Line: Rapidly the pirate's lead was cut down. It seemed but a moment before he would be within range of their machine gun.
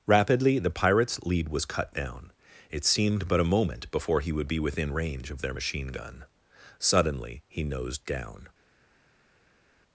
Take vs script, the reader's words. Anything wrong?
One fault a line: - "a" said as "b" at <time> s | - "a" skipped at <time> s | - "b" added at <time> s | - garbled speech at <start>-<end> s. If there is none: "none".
- "Suddenly he nosed down" added at 6.8 s